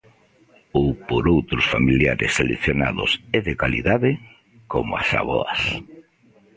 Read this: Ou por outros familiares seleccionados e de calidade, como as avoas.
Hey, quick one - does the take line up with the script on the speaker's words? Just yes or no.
yes